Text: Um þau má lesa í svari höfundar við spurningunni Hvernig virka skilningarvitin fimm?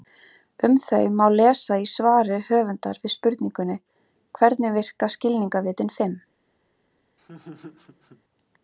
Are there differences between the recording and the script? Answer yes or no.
no